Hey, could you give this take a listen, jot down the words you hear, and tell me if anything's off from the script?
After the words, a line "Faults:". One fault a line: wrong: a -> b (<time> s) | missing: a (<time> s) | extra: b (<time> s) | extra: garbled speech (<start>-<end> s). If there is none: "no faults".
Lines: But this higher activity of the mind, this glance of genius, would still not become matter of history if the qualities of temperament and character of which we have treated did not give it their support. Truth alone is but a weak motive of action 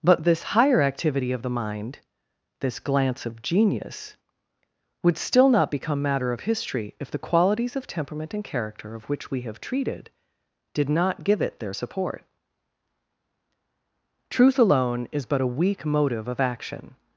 But this higher activity of the mind, this glance of genius, would still not become matter of history if the qualities of temperament and character of which we have treated did not give it their support. Truth alone is but a weak motive of action
Faults:
no faults